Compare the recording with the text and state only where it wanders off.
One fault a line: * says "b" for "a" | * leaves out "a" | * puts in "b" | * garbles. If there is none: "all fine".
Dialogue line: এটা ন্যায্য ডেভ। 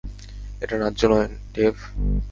* puts in "নয়"